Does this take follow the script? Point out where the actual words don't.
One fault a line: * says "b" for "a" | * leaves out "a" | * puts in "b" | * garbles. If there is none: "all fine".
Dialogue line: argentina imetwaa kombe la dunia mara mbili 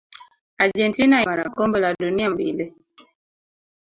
* says "mara" for "imetwaa"
* leaves out "mara"